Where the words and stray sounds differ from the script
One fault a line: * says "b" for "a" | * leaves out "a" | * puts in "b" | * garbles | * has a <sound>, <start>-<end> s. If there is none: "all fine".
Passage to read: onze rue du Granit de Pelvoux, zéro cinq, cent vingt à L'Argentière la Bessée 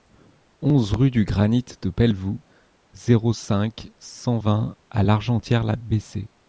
all fine